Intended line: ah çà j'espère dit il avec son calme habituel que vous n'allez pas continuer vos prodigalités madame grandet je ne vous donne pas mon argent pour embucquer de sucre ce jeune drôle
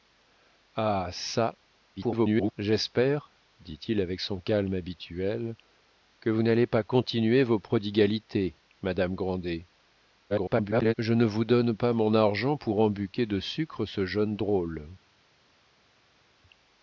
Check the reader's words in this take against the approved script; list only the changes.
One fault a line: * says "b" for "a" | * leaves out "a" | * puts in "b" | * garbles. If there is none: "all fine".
* garbles
* garbles